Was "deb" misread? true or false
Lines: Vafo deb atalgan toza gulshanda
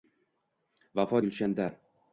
true